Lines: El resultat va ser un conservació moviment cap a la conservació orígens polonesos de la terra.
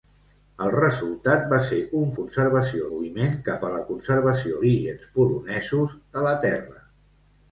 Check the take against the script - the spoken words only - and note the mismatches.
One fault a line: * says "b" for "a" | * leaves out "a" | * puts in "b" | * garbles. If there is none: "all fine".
all fine